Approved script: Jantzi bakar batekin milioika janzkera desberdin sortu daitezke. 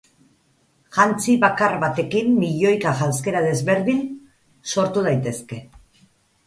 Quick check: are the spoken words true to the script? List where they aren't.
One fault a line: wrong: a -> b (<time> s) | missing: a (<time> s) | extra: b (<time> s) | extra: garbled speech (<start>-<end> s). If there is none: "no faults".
no faults